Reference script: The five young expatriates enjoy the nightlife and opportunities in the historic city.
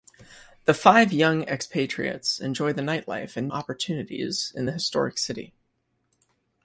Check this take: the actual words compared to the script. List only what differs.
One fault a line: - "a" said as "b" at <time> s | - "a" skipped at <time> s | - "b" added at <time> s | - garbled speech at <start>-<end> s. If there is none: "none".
none